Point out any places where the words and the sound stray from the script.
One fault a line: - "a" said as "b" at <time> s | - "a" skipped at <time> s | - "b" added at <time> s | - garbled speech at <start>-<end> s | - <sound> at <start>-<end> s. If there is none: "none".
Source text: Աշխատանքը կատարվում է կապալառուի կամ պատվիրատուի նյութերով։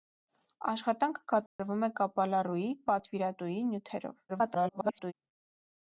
- dropout at 1.5-1.6 s
- "կամ" skipped at 2.6 s
- garbled speech at 4.3-5.1 s